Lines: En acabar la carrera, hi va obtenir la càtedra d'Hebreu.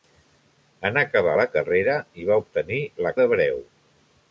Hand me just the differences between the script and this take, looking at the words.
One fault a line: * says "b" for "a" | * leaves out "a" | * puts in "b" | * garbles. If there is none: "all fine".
* leaves out "càtedra"